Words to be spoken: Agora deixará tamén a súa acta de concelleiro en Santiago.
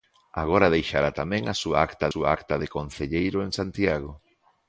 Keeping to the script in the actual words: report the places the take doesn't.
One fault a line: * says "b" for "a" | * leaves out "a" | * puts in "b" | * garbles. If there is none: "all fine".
* puts in "súa acta"